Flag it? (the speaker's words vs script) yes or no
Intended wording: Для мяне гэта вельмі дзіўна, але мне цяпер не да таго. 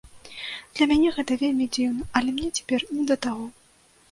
no